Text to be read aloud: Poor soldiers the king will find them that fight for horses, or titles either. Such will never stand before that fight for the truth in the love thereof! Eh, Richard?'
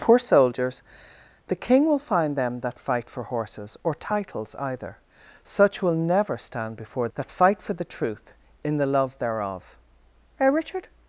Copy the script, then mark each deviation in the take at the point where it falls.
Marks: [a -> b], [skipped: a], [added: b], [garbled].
Poor soldiers the king will find them that fight for horses, or titles either. Such will never stand before that fight for the truth in the love thereof! Eh, Richard?'